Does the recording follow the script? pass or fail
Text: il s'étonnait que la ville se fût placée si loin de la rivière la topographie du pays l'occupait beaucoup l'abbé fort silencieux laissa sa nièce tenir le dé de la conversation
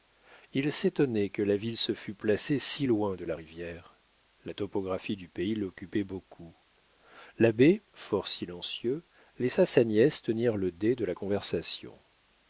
pass